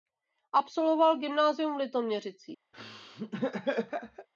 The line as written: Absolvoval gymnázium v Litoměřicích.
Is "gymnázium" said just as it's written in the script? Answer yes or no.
yes